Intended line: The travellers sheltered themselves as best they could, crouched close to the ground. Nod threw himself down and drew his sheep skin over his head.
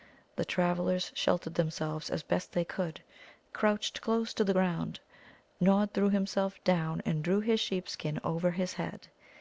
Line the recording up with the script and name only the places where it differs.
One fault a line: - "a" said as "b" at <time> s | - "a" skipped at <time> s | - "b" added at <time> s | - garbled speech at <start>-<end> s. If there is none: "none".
none